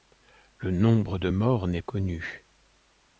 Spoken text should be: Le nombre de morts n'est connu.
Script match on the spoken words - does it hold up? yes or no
yes